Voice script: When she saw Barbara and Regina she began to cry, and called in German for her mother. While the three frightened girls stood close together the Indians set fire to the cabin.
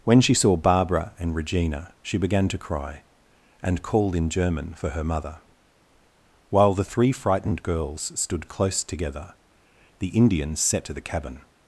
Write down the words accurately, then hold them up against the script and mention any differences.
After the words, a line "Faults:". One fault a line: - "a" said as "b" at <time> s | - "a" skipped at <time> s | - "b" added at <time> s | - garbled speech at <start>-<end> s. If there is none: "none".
When she saw Barbara and Regina she began to cry, and called in German for her mother. While the three frightened girls stood close together the Indians set to the cabin.
Faults:
- "fire" skipped at 10.9 s